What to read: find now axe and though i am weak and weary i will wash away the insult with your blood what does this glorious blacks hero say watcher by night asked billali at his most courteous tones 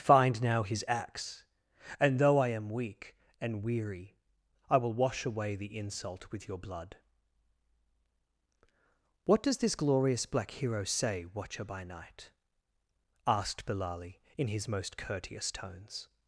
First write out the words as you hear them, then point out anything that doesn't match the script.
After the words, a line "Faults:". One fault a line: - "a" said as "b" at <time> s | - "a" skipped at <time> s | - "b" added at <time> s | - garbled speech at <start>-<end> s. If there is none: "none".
find now his axe and though i am weak and weary i will wash away the insult with your blood what does this glorious black hero say watcher by night asked billali in his most courteous tones
Faults:
- "his" added at 0.6 s
- "blacks" said as "black" at 10.3 s
- "at" said as "in" at 14.4 s